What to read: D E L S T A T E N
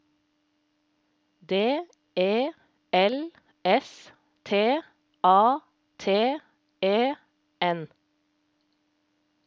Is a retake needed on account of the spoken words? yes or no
no